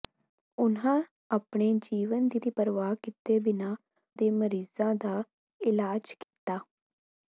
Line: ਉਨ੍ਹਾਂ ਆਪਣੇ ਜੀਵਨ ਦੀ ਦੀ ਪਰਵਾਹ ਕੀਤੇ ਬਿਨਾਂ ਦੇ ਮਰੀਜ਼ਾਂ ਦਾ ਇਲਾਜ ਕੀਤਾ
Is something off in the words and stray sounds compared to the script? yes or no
yes